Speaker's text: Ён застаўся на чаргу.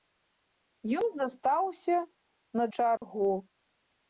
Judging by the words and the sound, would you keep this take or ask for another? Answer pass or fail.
fail